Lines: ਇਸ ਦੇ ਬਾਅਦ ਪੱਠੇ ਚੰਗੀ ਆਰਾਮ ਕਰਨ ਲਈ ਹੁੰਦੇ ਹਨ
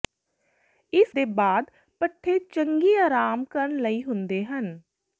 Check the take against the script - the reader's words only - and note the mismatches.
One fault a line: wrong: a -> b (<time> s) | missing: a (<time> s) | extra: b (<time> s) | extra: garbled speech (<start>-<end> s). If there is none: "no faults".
no faults